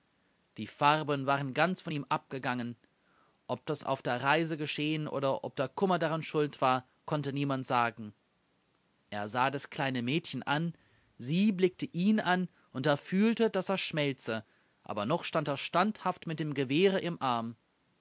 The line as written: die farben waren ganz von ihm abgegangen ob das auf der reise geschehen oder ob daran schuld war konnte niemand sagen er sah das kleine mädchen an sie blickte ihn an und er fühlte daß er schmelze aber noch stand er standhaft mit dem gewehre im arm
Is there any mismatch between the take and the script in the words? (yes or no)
yes